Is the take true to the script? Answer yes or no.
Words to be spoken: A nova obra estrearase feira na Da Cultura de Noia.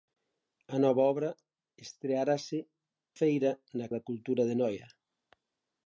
yes